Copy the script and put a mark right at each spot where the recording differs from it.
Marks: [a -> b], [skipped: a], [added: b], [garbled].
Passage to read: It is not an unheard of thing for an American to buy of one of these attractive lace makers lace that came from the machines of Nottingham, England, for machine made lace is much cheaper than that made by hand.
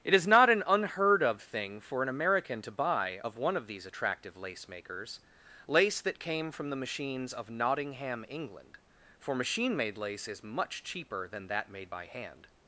It is not an unheard of thing for an American to buy of one of these attractive lace makers lace that came from the machines of Nottingham, England, for machine made lace is much cheaper than that made by hand.